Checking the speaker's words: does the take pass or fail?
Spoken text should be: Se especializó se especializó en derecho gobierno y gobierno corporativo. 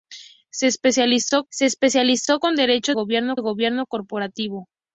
pass